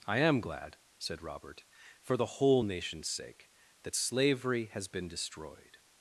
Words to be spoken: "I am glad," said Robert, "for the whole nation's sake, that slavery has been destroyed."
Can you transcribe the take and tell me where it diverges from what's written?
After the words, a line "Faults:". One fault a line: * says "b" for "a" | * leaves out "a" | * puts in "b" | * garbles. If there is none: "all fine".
"I am glad," said Robert, "for the whole nation's sake, that slavery has been destroyed."
Faults:
all fine